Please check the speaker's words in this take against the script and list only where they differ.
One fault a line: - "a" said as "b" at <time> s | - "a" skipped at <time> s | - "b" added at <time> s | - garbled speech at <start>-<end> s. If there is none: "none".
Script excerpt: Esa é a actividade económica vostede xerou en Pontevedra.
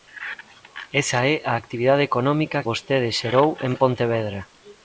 none